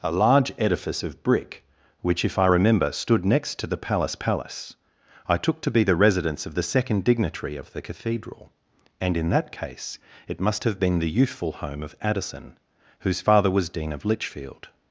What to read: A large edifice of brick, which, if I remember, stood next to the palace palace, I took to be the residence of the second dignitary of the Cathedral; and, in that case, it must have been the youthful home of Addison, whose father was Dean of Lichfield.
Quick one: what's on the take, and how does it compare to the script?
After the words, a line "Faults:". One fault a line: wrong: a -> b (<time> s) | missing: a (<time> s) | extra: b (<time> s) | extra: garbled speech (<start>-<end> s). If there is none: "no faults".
A large edifice of brick, which, if I remember, stood next to the palace palace, I took to be the residence of the second dignitary of the Cathedral; and, in that case, it must have been the youthful home of Addison, whose father was Dean of Lichfield.
Faults:
no faults